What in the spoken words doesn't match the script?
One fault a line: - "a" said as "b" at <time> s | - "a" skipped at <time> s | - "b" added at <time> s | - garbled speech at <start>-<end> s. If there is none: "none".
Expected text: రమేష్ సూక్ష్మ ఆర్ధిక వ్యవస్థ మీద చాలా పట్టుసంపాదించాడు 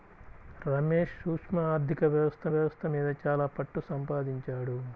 - "వ్యవస్థ" added at 2.5 s